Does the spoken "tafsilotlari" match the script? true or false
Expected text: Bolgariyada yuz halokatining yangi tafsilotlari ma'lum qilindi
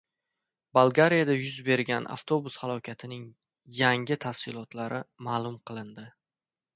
true